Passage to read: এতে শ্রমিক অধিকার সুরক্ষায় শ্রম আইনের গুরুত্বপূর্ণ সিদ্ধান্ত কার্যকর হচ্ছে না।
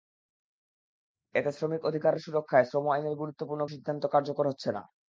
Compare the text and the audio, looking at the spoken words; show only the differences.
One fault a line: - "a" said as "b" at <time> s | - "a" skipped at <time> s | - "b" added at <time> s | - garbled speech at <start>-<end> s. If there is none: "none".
none